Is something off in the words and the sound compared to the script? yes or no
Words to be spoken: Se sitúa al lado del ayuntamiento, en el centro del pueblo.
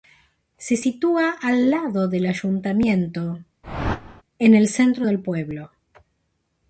yes